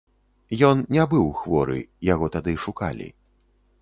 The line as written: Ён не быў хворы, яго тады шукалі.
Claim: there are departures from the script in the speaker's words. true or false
false